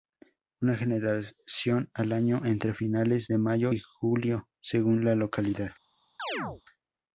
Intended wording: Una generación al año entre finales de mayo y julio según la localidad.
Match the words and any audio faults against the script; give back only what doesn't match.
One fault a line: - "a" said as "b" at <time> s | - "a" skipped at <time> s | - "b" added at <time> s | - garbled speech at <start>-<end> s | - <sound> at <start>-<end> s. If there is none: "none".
- chirp at 6.2-6.6 s